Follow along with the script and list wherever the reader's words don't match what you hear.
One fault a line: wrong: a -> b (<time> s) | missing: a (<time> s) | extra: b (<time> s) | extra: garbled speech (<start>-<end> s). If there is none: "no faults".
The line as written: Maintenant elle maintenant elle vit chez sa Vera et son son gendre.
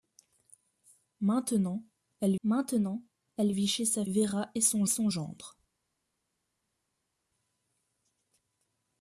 no faults